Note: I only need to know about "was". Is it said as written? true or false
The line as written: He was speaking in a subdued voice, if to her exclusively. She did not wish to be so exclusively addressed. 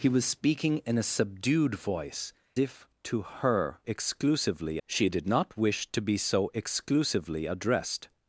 true